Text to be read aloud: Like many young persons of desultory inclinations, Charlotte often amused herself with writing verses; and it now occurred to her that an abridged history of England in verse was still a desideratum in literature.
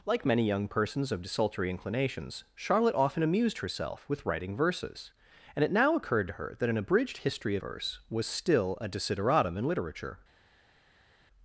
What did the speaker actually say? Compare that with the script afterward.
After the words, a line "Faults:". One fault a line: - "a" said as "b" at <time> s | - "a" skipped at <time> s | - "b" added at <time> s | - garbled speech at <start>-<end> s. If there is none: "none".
Like many young persons of desultory inclinations, Charlotte often amused herself with writing verses; and it now occurred to her that an abridged history verse was still a desideratum in literature.
Faults:
- "of England in" skipped at 7.6 s